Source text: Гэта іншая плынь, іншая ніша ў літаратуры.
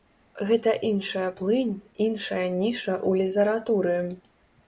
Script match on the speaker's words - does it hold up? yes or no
yes